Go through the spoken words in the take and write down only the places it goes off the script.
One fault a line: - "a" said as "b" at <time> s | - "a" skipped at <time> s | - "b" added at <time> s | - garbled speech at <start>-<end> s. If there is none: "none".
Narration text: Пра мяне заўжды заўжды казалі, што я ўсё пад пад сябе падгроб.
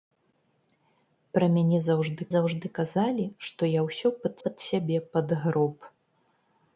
none